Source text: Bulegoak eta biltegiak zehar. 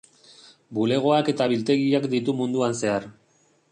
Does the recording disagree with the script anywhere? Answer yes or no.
yes